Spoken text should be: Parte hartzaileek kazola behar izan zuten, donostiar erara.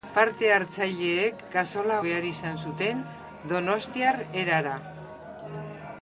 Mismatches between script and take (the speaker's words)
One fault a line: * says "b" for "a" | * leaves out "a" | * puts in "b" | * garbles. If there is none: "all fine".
all fine